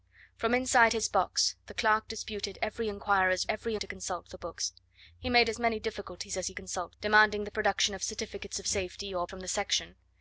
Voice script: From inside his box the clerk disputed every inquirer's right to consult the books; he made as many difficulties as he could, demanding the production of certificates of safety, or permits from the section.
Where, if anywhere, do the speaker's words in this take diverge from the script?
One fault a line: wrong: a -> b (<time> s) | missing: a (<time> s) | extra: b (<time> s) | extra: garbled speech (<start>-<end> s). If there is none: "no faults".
wrong: right -> every (3.5 s)
wrong: could -> consult (6.5 s)
missing: permits (9.3 s)